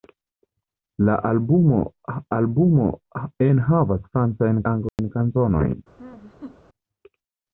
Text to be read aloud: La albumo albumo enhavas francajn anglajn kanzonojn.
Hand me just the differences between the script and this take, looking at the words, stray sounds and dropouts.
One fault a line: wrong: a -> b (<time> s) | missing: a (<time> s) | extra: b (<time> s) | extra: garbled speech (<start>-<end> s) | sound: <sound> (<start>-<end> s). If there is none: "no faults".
sound: dropout (4.9-5.0 s)
sound: laugh (6.0-6.6 s)